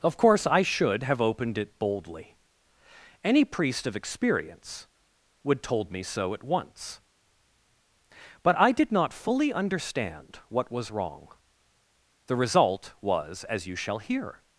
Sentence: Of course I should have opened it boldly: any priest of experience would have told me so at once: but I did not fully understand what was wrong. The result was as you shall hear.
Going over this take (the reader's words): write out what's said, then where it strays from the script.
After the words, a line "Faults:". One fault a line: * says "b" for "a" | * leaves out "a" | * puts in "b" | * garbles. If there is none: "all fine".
Of course I should have opened it boldly: any priest of experience would told me so at once: but I did not fully understand what was wrong. The result was as you shall hear.
Faults:
* leaves out "have"